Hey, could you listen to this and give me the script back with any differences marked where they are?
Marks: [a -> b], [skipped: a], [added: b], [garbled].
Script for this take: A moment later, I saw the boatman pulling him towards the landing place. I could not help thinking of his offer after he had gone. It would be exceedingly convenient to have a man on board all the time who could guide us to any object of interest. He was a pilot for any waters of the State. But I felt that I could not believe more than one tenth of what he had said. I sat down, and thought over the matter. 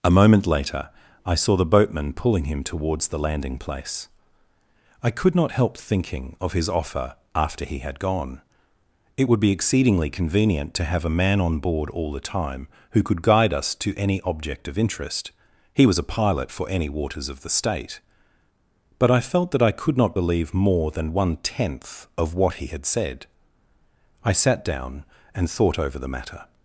A moment later, I saw the boatman pulling him towards the landing place. I could not help thinking of his offer after he had gone. It would be exceedingly convenient to have a man on board all the time who could guide us to any object of interest. He was a pilot for any waters of the State. But I felt that I could not believe more than one tenth of what he had said. I sat down, and thought over the matter.